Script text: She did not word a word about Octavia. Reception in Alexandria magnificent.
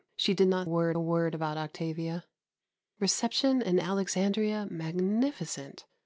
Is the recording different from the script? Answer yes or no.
no